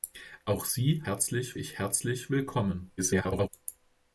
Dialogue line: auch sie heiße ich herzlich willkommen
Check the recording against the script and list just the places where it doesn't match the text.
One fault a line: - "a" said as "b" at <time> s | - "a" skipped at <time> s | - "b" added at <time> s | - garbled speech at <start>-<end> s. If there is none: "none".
- "heiße" said as "herzlich" at 1.1 s
- garbled speech at 3.0-3.5 s